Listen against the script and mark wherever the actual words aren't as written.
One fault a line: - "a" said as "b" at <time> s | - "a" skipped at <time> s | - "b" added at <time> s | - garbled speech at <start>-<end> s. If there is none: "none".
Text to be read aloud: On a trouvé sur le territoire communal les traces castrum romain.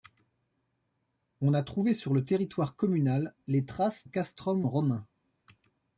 none